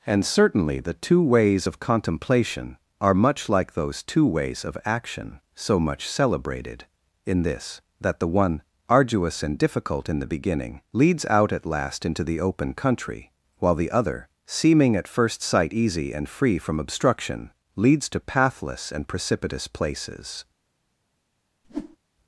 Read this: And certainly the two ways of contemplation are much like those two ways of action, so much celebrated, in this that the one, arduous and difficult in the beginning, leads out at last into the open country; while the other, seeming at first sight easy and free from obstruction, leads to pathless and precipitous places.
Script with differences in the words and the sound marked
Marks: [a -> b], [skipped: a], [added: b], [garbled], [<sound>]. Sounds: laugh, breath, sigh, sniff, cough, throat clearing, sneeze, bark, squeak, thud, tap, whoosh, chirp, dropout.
And certainly the two ways of contemplation are much like those two ways of action, so much celebrated, in this that the one, arduous and difficult in the beginning, leads out at last into the open country; while the other, seeming at first sight easy and free from obstruction, leads to pathless and precipitous places. [whoosh]